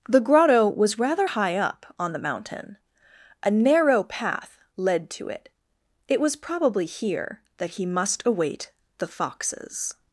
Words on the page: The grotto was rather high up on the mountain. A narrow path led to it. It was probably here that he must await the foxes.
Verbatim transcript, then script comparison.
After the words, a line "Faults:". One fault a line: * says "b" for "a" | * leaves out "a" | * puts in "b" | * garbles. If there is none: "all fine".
The grotto was rather high up on the mountain. A narrow path led to it. It was probably here that he must await the foxes.
Faults:
all fine